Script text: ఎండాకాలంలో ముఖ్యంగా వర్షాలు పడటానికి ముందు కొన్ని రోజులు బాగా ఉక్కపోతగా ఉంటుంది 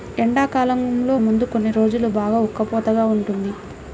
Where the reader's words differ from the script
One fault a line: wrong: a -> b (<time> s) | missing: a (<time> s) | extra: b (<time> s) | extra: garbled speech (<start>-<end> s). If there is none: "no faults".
missing: ముఖ్యంగా వర్షాలు పడటానికి (1.1 s)